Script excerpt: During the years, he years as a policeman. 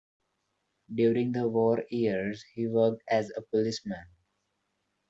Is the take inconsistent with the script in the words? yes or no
yes